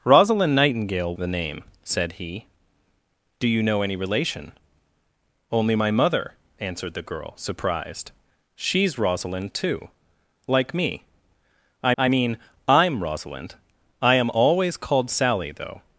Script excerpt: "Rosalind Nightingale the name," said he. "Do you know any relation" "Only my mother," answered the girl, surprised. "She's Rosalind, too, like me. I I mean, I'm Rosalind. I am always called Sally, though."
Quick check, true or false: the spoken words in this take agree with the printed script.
true